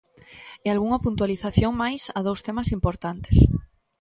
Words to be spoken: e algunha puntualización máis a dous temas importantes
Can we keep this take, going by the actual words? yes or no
yes